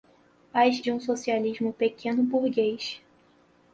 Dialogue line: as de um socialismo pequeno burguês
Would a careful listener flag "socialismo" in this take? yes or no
no